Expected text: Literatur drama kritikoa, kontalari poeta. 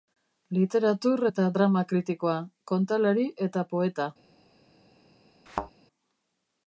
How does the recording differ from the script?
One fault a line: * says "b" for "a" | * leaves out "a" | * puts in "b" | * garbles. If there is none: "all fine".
* puts in "eta"
* puts in "eta"